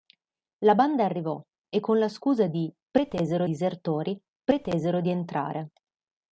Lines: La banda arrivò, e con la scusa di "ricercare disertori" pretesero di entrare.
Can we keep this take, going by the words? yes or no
no